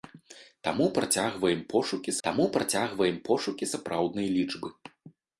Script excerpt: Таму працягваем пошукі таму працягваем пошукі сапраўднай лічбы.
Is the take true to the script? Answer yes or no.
yes